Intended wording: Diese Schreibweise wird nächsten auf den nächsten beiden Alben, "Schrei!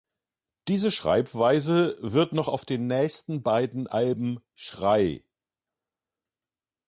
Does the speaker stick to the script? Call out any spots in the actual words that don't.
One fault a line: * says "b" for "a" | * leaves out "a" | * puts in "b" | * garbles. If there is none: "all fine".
* says "noch" for "nächsten"